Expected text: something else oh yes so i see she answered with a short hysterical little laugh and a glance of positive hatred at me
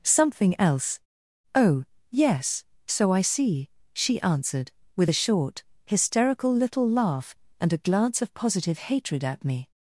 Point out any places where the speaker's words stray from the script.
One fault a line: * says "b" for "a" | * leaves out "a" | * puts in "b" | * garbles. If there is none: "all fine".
all fine